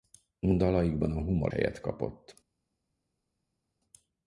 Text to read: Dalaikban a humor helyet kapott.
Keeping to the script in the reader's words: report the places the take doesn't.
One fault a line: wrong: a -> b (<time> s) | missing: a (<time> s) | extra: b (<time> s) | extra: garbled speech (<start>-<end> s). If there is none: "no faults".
no faults